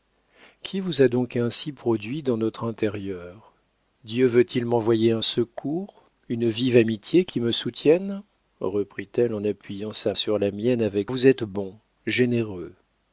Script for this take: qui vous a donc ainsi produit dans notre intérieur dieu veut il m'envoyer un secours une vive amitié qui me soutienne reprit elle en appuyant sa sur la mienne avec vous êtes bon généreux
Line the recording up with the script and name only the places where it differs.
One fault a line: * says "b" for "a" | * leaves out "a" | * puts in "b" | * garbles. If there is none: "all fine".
all fine